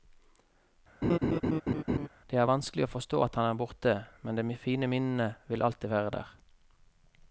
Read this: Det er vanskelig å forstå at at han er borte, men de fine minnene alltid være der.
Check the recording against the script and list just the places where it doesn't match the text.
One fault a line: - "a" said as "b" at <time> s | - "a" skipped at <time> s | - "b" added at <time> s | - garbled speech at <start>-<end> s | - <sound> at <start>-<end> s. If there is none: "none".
- laugh at 1.0-2.1 s
- "at" skipped at 3.4 s
- "vil" added at 5.5 s